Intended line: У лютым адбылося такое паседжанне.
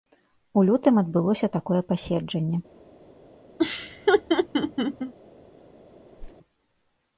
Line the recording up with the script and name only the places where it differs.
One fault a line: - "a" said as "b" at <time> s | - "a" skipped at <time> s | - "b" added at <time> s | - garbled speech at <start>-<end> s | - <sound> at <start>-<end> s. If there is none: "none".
- laugh at 3.6-5.1 s
- whoosh at 6.2-6.4 s